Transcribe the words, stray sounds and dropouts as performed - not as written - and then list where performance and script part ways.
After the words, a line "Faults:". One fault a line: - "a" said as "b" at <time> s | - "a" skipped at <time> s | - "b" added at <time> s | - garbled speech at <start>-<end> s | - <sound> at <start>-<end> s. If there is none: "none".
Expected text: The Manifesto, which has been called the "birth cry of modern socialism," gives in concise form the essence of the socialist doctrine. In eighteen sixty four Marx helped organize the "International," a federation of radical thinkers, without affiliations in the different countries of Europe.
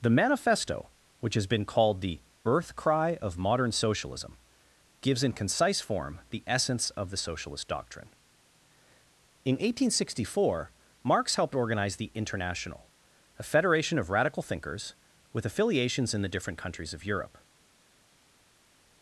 The Manifesto, which has been called the "birth cry of modern socialism," gives in concise form the essence of the socialist doctrine. In eighteen sixty four Marx helped organize the "International," a federation of radical thinkers, with affiliations in the different countries of Europe.
Faults:
- "without" said as "with" at 15.3 s